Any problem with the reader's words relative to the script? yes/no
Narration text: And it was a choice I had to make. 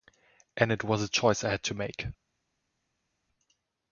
no